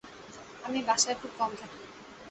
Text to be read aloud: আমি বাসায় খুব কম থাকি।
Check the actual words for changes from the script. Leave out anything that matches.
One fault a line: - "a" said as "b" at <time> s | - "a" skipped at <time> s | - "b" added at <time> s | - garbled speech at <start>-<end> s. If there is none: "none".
none